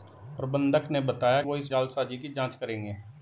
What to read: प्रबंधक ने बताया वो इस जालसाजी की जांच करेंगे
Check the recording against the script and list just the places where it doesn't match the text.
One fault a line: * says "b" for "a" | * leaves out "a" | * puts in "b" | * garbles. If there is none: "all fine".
all fine